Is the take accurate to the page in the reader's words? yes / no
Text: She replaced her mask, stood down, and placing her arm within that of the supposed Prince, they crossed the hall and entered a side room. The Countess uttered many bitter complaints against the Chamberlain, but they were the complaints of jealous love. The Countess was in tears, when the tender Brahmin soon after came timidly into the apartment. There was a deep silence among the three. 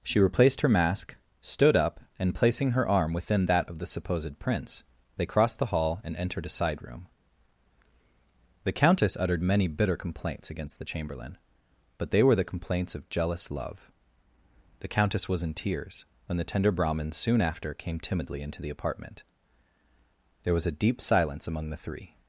no